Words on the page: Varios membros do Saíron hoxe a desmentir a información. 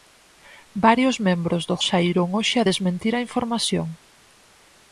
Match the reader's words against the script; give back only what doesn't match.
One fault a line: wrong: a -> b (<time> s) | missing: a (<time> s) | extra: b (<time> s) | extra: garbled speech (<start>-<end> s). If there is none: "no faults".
no faults